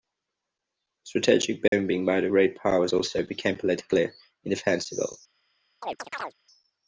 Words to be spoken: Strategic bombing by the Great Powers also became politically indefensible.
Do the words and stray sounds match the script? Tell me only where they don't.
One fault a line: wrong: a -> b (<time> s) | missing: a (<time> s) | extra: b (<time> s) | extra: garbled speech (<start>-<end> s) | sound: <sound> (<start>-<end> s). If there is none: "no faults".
sound: dropout (1.7-1.7 s)
sound: chirp (5.8-6.3 s)